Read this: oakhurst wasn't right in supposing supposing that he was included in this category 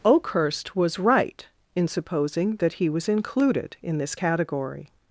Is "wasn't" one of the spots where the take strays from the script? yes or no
yes